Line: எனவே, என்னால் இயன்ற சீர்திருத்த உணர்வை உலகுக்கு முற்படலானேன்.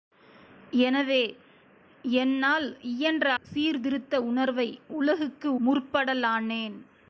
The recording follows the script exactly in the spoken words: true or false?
true